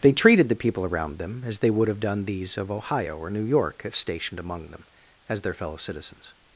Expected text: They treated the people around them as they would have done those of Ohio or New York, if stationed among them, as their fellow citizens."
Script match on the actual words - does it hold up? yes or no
no